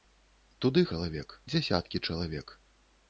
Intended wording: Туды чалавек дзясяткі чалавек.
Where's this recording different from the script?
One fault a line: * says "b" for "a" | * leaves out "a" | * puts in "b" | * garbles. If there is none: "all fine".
all fine